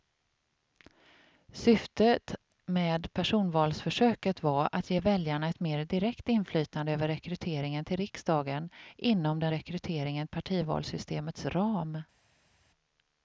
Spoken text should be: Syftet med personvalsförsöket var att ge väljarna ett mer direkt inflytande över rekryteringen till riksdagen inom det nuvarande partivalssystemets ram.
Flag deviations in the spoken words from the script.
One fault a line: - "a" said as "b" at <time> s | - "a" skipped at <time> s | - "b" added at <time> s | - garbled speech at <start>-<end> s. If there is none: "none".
- "nuvarande" said as "rekryteringen" at 9.5 s